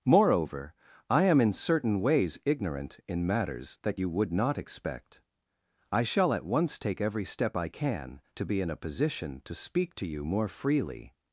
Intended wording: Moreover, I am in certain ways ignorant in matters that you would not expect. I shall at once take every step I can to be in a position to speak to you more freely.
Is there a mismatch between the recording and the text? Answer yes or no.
no